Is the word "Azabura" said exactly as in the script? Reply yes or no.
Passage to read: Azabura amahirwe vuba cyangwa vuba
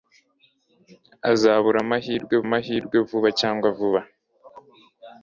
yes